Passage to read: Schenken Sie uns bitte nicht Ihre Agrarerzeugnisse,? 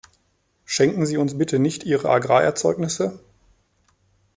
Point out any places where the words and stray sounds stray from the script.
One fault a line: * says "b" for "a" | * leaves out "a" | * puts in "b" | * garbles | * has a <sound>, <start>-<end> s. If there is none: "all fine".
all fine